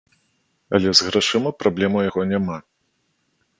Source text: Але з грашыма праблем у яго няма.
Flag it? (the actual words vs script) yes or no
no